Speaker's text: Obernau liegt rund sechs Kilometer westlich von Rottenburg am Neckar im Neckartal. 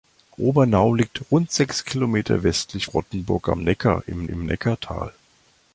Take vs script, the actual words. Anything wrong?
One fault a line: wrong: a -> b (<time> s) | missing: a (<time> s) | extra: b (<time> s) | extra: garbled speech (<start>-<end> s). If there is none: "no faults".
missing: von (2.9 s)
extra: im (4.3 s)